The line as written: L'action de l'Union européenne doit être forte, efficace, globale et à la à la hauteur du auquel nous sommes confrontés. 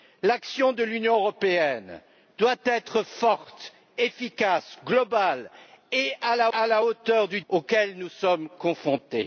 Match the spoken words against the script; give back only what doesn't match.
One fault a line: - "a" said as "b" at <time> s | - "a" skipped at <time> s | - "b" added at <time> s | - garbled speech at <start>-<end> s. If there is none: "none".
none